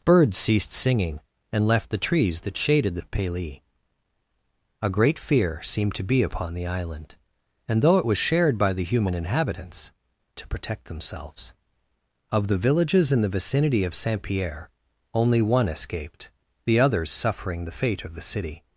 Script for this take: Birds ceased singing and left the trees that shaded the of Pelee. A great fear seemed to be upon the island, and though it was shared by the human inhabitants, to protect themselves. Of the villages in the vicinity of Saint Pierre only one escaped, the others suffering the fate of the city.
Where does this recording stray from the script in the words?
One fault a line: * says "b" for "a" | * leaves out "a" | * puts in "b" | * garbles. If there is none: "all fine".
all fine